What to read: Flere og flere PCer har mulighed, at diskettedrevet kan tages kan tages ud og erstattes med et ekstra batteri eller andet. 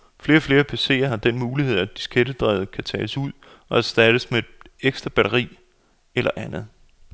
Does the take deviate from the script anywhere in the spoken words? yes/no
yes